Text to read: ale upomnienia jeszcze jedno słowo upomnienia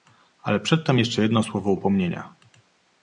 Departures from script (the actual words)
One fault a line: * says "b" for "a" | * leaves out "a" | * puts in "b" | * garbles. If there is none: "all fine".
* says "przedtem" for "upomnienia"